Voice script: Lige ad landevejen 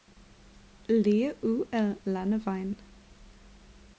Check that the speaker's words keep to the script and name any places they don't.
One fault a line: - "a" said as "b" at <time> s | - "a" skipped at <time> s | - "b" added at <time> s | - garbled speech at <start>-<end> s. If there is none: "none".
- "ud" added at 1.4 s